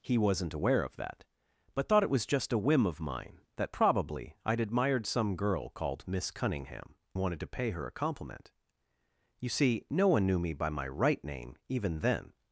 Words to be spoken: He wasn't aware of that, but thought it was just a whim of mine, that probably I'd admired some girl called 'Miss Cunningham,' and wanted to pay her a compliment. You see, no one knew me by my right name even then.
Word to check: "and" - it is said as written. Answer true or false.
false